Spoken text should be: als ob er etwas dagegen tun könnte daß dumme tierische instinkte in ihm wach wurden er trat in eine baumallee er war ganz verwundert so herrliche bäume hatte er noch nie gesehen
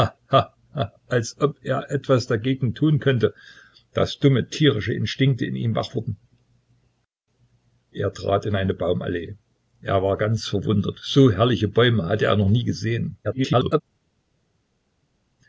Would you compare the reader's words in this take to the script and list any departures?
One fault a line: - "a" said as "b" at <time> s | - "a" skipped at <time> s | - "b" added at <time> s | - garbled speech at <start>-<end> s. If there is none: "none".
- garbled speech at 13.2-13.8 s